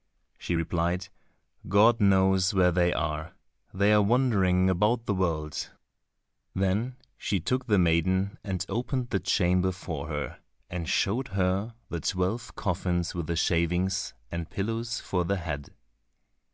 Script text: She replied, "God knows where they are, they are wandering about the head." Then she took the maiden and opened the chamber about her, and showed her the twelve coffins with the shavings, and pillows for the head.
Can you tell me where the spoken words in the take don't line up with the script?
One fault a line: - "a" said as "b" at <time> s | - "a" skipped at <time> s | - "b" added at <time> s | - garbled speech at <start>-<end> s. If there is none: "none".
- "head" said as "world" at 5.1 s
- "about" said as "for" at 9.7 s